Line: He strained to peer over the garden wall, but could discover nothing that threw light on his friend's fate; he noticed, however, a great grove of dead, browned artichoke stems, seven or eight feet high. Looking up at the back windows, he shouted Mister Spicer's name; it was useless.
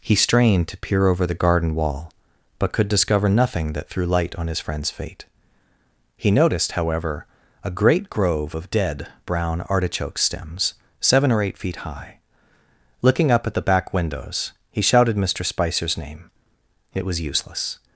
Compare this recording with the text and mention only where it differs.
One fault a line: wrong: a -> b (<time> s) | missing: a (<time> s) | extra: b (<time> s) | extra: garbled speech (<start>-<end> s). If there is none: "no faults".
wrong: browned -> brown (9.2 s)